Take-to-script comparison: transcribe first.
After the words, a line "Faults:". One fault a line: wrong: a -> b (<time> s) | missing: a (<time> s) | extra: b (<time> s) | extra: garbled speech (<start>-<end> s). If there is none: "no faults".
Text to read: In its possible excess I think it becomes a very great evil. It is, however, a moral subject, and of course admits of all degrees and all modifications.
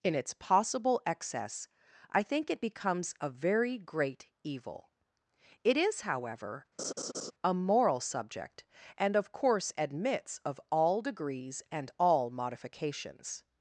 In its possible excess I think it becomes a very great evil. It is, however, a moral subject, and of course admits of all degrees and all modifications.
Faults:
no faults